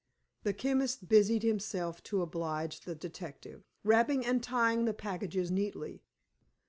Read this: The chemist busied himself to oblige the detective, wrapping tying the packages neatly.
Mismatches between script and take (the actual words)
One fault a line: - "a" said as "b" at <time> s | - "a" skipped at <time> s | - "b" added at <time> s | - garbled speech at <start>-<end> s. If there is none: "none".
- "and" added at 4.2 s